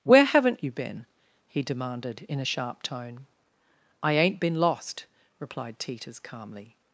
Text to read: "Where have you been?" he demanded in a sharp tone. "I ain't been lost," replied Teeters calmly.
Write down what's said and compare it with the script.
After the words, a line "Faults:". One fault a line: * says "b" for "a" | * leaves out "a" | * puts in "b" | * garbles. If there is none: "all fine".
"Where haven't you been?" he demanded in a sharp tone. "I ain't been lost," replied Teeters calmly.
Faults:
* says "haven't" for "have"